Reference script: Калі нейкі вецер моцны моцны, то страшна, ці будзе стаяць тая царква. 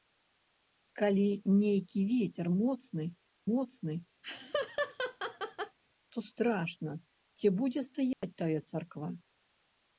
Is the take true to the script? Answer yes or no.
yes